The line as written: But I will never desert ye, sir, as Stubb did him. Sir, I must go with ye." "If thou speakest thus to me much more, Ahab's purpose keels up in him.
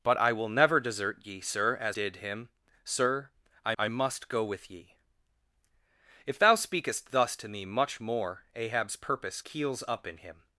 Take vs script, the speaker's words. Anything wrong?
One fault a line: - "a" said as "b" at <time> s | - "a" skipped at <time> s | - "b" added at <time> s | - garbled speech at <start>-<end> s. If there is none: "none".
- "Stubb" skipped at 2.0 s
- "I" added at 3.8 s